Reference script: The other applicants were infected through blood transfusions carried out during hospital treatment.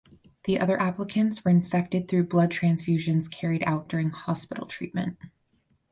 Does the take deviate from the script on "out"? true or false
false